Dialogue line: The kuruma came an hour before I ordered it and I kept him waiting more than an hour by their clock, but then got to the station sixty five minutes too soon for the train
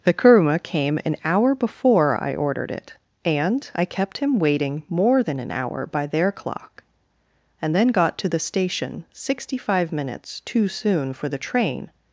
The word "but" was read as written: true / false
false